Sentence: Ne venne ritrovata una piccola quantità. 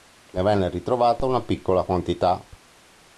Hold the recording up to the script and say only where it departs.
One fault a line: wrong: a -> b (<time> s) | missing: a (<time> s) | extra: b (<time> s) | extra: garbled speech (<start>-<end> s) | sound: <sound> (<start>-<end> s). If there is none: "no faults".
no faults